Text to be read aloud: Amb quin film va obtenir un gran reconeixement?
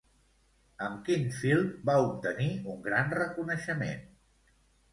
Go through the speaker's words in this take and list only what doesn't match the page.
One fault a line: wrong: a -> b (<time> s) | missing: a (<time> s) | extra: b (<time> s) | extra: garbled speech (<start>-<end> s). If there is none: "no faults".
no faults